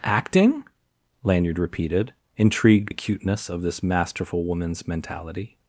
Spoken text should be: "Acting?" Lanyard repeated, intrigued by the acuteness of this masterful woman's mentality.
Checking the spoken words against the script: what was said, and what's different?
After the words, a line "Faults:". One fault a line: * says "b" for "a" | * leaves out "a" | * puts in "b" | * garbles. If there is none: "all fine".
"Acting?" Lanyard repeated, intrigued acuteness of this masterful woman's mentality.
Faults:
* leaves out "by the"